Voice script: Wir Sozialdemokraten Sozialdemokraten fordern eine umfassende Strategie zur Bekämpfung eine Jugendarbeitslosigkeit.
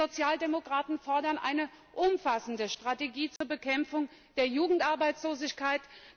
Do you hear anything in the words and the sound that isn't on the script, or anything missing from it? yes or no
yes